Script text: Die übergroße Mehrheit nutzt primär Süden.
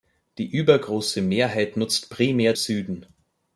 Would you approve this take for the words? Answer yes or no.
yes